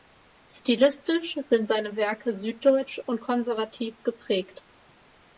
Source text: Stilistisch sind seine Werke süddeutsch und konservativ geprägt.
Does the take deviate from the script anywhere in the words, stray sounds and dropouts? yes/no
no